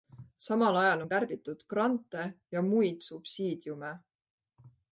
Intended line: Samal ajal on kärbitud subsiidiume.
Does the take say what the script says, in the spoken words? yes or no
no